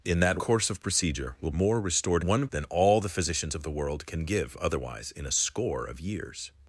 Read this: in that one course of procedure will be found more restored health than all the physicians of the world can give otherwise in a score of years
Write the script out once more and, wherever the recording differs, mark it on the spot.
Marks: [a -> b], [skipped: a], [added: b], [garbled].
in that [skipped: one] course of procedure will [skipped: be found] more restored [health -> one] than all the physicians of the world can give otherwise in a score of years